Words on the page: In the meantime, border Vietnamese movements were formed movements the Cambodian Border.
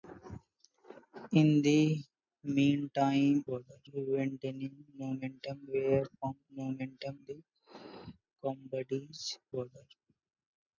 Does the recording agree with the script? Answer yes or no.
yes